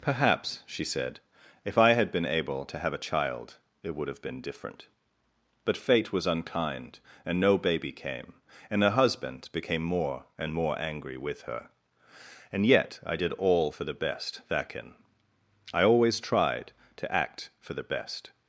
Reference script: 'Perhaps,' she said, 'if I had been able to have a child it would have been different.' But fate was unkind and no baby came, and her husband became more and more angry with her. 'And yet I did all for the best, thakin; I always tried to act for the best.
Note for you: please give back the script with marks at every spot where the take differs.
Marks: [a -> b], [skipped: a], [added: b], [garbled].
'Perhaps,' she said, 'if I had been able to have a child it would have been different.' But fate was unkind and no baby came, and her husband became more and more angry with her. 'And yet I did all for the best, thakin; I always tried to act for the best.